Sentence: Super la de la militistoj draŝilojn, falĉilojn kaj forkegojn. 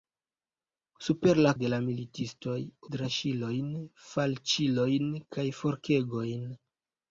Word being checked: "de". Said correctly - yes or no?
yes